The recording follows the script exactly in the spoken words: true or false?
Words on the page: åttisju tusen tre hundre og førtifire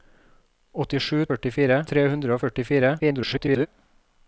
false